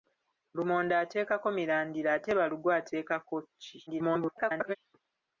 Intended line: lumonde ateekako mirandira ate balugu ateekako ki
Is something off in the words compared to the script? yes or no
yes